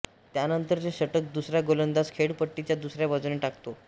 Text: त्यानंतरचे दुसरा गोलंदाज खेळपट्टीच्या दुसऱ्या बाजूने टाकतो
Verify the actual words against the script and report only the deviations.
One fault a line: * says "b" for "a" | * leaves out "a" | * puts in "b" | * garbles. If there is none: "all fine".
* puts in "षटक"